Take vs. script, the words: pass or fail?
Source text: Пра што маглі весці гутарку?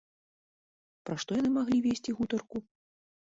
fail